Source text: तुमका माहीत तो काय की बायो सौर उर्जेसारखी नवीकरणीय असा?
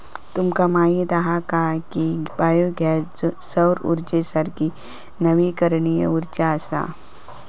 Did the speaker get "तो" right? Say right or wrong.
wrong